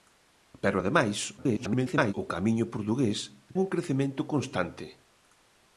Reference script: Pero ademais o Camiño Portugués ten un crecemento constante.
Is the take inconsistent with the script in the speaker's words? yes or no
yes